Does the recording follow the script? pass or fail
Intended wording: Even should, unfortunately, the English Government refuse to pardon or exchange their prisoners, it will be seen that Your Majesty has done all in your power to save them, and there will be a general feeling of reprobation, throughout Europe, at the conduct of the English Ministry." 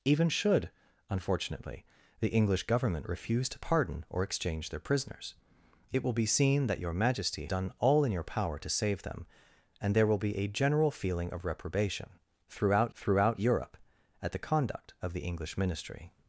fail